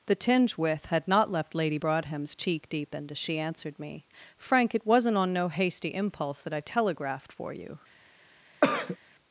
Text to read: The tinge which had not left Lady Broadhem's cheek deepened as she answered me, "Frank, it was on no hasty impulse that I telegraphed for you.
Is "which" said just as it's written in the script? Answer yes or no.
no